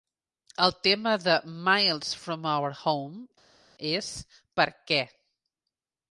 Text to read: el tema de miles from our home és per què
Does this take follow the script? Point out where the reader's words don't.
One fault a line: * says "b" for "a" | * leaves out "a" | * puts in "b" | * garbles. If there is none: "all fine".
all fine